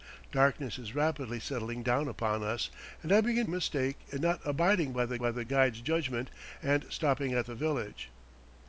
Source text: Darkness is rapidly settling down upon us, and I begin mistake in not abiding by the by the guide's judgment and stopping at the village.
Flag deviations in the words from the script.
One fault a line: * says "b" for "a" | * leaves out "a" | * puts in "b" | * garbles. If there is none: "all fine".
all fine